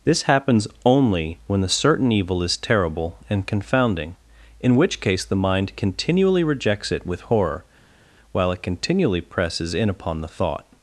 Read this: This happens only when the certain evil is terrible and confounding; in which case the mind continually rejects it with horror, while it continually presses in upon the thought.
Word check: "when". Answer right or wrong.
right